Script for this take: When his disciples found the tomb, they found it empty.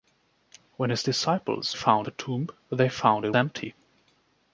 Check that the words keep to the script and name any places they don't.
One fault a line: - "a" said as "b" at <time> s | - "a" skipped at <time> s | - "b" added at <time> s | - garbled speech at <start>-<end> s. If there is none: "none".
none